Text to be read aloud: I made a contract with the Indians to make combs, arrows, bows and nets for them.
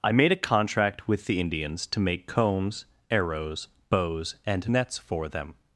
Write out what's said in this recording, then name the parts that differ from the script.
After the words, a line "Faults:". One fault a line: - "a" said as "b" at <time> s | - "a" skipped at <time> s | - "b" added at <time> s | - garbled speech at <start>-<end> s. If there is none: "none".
I made a contract with the Indians to make combs, arrows, bows and nets for them.
Faults:
none